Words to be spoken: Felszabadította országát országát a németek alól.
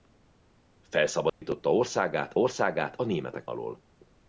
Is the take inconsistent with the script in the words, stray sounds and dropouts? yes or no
yes